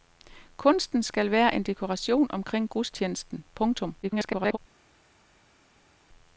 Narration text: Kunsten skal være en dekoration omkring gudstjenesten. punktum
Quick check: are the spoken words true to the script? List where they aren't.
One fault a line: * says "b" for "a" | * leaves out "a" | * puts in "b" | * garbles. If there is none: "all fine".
* garbles